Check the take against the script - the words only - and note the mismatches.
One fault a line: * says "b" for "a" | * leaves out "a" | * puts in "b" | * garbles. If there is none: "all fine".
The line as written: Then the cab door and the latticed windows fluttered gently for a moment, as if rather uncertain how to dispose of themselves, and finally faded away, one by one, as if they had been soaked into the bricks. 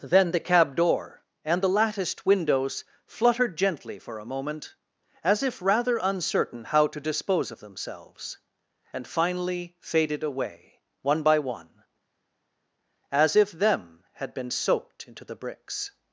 * says "them" for "they"